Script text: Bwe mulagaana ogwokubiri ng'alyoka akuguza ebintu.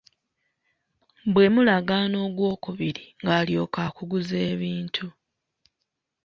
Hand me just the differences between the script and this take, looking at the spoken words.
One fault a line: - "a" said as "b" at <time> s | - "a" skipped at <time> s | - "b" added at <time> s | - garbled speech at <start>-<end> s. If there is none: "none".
none